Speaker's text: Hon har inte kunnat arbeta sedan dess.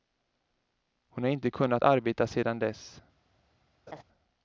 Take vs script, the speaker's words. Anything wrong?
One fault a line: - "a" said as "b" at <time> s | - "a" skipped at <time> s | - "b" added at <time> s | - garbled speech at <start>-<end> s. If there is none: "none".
none